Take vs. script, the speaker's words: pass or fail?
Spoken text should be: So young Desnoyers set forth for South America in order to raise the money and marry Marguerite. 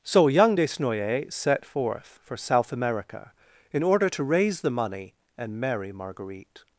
pass